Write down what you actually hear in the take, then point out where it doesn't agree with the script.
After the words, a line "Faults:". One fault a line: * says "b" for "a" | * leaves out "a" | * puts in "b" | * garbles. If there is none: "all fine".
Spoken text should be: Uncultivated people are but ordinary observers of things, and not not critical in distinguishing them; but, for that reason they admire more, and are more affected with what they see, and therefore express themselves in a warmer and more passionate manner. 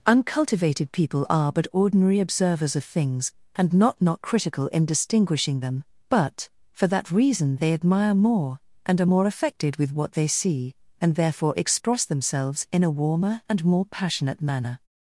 Uncultivated people are but ordinary observers of things, and not not critical in distinguishing them; but, for that reason they admire more, and are more affected with what they see, and therefore express themselves in a warmer and more passionate manner.
Faults:
all fine